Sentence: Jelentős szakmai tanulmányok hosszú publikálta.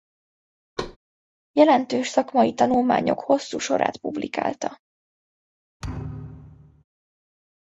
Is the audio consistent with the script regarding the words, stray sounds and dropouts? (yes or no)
no